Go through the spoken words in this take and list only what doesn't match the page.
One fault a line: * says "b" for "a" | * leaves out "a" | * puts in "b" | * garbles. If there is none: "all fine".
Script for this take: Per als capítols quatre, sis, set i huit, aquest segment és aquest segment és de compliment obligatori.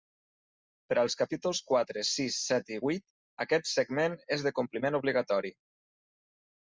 * leaves out "aquest segment és"